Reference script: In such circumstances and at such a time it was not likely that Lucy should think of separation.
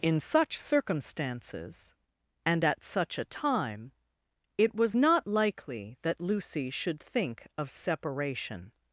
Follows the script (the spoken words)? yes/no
yes